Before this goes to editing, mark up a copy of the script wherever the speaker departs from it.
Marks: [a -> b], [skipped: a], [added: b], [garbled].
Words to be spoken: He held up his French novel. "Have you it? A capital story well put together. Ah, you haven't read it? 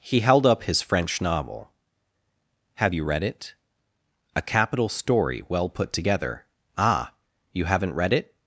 He held up his French novel. "Have you [added: read] it? A capital story well put together. Ah, you haven't read it?